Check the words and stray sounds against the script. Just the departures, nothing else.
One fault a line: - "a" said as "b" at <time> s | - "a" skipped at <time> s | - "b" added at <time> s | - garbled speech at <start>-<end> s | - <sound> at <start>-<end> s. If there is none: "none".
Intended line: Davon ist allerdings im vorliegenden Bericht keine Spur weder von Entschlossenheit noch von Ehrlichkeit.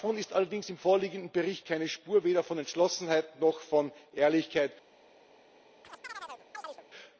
- chirp at 5.8-6.9 s